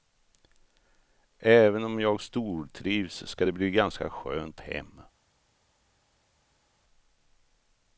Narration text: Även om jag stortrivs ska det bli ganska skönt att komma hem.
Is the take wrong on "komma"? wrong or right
wrong